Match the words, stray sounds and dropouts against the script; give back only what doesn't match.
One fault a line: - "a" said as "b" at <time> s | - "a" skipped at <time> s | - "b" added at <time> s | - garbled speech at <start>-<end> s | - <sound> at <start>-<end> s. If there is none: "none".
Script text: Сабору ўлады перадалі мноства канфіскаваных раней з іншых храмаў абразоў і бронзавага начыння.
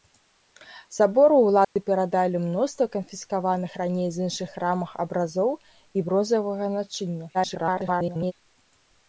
- dropout at 1.6-1.8 s
- garbled speech at 7.3-8.3 s